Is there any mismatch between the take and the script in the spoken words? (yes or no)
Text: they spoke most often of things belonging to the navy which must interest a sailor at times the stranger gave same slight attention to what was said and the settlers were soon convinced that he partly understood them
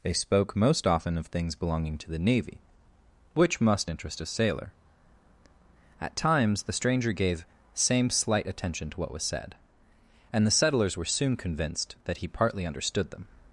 no